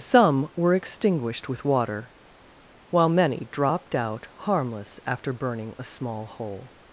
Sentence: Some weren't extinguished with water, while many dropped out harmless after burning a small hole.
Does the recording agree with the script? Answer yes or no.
no